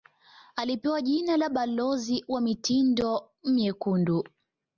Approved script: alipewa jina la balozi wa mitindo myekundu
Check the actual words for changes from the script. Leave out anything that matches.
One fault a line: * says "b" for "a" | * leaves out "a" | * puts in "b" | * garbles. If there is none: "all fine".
all fine